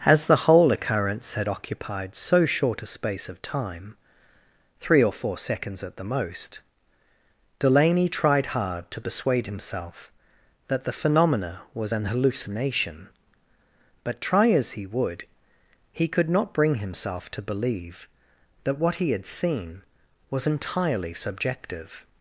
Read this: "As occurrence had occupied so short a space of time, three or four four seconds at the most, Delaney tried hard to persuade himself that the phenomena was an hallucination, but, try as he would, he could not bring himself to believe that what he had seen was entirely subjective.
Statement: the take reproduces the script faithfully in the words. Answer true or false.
false